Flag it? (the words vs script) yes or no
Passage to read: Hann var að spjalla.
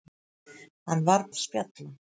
no